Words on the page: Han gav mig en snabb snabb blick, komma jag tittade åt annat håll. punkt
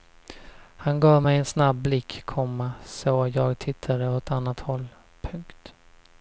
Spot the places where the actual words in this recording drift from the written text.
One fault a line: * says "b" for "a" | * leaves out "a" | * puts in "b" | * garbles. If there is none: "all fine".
* leaves out "snabb"
* puts in "så"